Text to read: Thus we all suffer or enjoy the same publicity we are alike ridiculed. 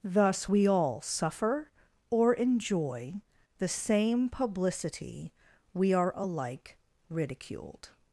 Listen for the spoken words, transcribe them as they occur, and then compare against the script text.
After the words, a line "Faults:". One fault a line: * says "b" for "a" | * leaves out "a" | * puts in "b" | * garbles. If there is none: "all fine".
Thus we all suffer or enjoy the same publicity we are alike ridiculed.
Faults:
all fine